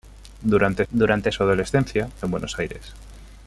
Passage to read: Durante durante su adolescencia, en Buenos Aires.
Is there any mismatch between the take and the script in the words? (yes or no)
no